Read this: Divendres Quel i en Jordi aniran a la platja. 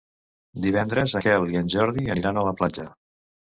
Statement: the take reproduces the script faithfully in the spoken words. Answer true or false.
true